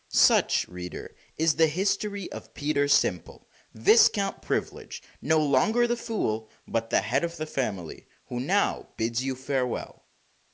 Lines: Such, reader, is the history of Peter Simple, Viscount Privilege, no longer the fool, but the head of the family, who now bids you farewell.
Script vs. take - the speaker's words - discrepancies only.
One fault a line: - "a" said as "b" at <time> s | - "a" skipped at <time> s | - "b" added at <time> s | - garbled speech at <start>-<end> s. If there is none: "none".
none